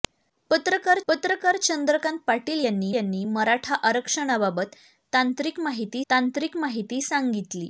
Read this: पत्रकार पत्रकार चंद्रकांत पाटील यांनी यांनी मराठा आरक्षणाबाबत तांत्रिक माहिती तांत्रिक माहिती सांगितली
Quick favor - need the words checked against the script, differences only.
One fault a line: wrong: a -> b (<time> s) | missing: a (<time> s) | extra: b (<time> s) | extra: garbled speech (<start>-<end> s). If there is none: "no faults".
no faults